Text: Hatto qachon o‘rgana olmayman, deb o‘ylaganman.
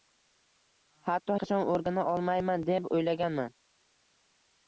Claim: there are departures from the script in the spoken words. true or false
false